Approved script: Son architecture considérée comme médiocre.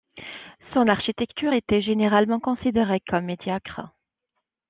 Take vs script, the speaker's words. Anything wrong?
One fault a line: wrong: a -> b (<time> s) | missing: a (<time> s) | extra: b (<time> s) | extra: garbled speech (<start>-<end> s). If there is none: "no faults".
extra: était généralement (1.5 s)